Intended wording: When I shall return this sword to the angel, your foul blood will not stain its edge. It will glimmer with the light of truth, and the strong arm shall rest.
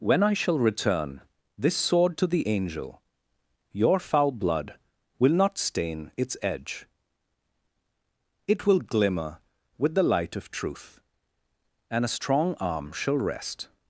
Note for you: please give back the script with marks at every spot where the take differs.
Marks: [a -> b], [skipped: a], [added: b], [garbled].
When I shall return this sword to the angel, your foul blood will not stain its edge. It will glimmer with the light of truth, and [the -> a] strong arm shall rest.